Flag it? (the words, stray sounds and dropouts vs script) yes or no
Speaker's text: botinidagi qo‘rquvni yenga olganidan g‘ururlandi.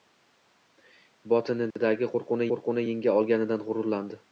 yes